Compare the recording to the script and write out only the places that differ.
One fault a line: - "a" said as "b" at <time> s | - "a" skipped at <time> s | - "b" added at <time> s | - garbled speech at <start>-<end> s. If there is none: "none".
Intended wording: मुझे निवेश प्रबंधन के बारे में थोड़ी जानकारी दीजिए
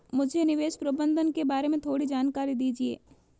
none